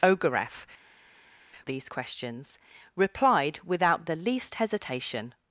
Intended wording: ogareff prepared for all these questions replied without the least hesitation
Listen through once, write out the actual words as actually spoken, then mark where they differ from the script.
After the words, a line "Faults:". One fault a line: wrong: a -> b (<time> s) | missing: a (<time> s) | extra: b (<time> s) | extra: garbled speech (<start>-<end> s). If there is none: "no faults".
ogareff these questions replied without the least hesitation
Faults:
missing: prepared for all (0.7 s)